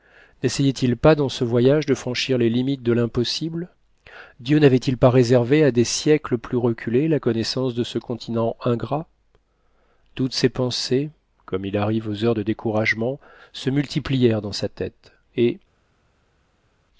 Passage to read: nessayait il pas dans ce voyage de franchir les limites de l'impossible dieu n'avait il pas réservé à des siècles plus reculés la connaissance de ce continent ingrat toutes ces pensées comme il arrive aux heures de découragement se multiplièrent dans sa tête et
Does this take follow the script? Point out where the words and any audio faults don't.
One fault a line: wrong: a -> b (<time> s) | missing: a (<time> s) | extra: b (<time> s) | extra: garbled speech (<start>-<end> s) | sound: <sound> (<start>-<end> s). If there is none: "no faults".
no faults